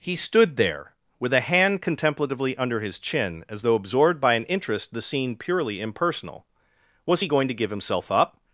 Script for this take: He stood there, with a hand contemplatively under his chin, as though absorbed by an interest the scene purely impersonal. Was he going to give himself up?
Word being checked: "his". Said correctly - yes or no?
yes